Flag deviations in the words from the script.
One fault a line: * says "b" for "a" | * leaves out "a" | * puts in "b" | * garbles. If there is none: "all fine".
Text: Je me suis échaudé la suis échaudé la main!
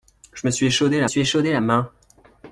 all fine